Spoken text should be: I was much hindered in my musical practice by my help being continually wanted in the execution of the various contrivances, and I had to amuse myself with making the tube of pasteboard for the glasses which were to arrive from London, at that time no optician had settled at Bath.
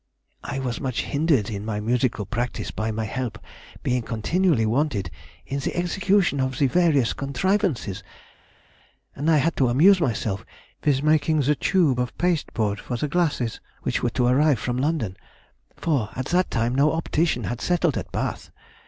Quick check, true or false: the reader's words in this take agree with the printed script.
false